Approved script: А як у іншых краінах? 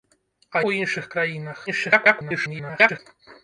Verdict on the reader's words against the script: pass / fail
fail